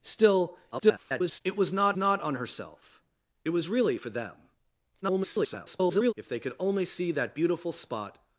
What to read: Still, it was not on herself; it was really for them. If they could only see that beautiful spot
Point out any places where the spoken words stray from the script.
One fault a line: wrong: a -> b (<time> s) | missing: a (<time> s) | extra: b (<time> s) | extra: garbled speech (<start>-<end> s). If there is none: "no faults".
extra: garbled speech (0.7-1.4 s)
extra: not (2.0 s)
extra: garbled speech (5.0-6.1 s)